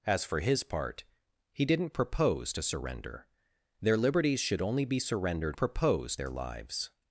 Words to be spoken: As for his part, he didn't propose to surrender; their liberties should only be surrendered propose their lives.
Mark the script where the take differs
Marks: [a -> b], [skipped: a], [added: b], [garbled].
As for his part, he didn't propose to surrender; their liberties should only be surrendered propose their lives.